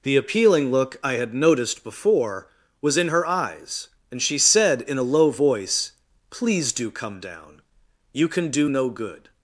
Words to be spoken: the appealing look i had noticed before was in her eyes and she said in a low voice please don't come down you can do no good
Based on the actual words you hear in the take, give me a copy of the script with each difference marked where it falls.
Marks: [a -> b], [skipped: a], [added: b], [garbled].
the appealing look i had noticed before was in her eyes and she said in a low voice please [don't -> do] come down you can do no good